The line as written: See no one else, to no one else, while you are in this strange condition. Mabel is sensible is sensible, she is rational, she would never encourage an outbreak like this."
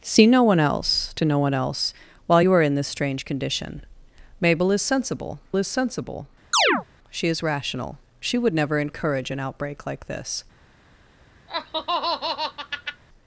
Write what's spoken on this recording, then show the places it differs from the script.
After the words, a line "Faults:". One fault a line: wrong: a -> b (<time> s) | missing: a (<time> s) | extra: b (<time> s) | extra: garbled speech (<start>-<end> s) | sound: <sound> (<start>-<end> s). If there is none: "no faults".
See no one else, to no one else, while you are in this strange condition. Mabel is sensible is sensible, she is rational, she would never encourage an outbreak like this."
Faults:
sound: chirp (6.5-6.8 s)
sound: laugh (11.5-13.0 s)